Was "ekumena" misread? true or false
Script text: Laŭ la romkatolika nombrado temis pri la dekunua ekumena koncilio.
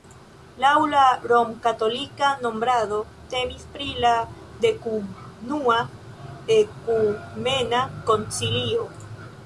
false